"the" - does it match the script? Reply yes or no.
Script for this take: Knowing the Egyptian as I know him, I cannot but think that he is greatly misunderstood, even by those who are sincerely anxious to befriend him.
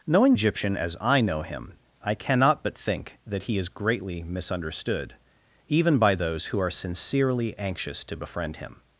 no